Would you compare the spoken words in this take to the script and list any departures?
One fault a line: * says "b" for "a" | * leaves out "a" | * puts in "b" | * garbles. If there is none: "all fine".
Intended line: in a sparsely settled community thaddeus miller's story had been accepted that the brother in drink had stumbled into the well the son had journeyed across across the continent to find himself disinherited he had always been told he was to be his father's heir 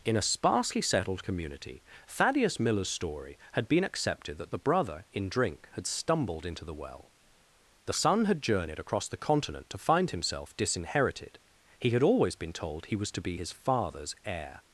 * leaves out "across"